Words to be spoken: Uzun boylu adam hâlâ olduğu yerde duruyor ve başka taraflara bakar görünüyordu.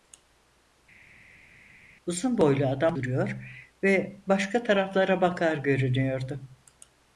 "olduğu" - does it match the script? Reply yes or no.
no